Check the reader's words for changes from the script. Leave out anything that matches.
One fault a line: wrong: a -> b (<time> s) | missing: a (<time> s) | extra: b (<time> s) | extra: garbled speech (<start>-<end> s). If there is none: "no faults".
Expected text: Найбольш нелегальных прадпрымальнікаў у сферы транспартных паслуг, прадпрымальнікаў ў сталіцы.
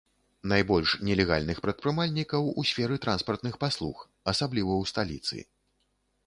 wrong: прадпрымальнікаў -> асабліва (4.3 s)